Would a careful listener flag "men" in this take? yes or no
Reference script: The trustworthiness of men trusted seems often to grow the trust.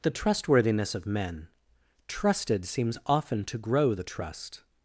no